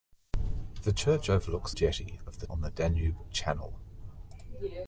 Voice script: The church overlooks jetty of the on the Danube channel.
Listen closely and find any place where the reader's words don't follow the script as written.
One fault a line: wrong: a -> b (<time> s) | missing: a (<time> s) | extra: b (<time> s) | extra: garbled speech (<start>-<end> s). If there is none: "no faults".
no faults